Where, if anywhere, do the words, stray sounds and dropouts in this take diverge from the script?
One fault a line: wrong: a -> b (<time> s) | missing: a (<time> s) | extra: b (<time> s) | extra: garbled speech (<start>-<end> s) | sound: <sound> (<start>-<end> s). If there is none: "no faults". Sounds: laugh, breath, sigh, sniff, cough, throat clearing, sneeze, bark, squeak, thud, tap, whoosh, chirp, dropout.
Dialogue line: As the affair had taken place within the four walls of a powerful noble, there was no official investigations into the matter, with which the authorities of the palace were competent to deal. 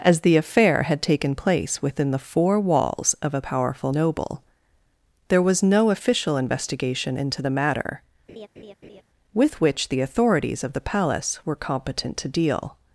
wrong: investigations -> investigation (6.4 s)
sound: laugh (8.3-9.0 s)